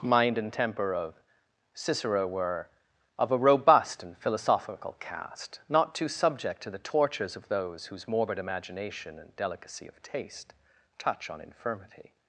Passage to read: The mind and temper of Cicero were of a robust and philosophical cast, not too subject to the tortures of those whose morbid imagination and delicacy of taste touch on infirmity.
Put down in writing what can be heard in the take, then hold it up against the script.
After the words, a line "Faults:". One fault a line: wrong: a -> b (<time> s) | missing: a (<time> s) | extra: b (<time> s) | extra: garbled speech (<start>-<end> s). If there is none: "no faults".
mind and temper of Cicero were of a robust and philosophical cast, not too subject to the tortures of those whose morbid imagination and delicacy of taste touch on infirmity.
Faults:
missing: The (0.0 s)